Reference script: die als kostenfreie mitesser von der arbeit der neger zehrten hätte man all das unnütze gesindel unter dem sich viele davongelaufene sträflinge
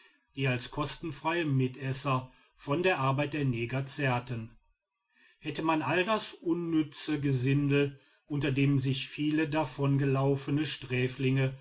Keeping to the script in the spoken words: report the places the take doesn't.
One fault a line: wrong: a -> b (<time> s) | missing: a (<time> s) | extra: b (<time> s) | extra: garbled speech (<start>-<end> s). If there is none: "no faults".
no faults